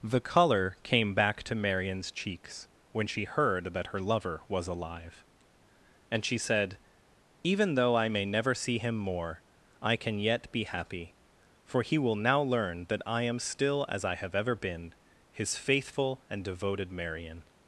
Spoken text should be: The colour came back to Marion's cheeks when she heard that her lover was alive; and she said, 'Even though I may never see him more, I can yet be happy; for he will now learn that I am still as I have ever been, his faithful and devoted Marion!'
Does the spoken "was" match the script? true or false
true